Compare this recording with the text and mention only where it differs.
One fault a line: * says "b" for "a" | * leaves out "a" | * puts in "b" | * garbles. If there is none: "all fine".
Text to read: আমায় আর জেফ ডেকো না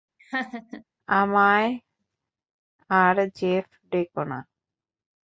all fine